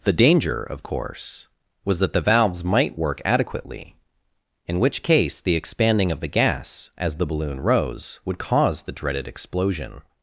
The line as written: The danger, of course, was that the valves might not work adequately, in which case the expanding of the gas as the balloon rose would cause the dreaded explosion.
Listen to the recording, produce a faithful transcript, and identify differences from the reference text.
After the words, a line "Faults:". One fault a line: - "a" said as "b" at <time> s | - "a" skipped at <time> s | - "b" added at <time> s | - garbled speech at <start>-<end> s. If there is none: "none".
The danger, of course, was that the valves might work adequately, in which case the expanding of the gas as the balloon rose would cause the dreaded explosion.
Faults:
- "not" skipped at 3.0 s